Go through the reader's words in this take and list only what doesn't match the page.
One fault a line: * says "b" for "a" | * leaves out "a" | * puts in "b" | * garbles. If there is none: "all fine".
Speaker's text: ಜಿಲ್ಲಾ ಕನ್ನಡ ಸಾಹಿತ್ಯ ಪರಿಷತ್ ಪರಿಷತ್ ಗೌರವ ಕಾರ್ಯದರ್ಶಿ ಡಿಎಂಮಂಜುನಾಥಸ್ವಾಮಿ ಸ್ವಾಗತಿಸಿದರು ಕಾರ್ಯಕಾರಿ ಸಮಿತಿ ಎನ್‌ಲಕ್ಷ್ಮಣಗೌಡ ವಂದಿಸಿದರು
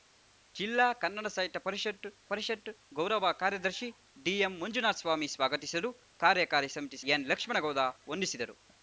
all fine